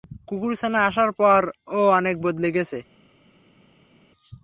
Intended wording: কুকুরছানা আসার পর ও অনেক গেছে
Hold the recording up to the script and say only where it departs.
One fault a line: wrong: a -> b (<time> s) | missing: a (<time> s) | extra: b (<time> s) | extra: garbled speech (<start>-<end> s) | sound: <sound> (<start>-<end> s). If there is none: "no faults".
extra: বদলে (2.2 s)